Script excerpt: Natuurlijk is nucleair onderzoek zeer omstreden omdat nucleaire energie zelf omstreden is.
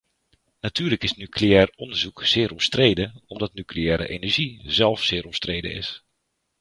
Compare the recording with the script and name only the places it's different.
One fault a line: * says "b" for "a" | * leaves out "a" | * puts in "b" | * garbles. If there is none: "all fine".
* puts in "zeer"